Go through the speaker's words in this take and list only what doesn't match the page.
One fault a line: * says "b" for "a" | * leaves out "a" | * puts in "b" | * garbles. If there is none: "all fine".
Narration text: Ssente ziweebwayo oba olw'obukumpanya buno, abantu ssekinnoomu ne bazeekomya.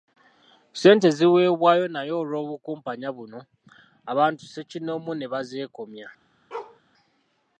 * says "naye" for "oba"